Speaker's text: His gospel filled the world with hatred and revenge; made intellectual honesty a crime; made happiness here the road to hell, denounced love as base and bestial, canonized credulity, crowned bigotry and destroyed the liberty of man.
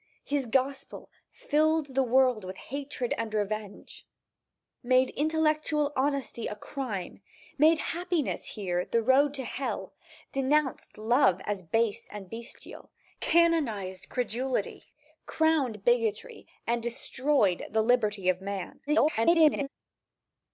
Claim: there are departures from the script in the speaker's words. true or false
true